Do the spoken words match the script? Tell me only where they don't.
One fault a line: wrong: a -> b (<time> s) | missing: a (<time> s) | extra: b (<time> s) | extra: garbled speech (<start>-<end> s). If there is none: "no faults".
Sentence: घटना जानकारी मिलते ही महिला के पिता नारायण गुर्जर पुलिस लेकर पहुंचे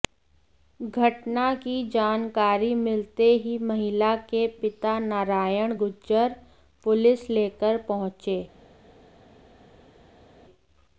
extra: की (1.5 s)